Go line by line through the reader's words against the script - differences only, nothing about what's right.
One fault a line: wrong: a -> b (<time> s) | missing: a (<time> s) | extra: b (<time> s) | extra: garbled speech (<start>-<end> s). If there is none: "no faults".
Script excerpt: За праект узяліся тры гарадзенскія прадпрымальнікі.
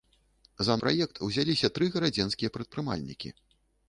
no faults